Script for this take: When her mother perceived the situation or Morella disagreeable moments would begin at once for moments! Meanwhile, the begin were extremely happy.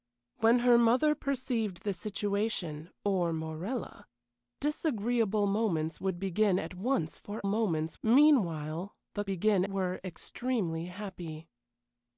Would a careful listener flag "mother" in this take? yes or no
no